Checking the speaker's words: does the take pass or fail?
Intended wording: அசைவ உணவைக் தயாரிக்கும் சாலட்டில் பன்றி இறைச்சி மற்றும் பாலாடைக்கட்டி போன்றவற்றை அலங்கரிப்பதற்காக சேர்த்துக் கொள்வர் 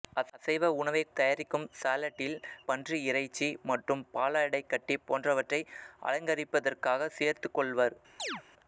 pass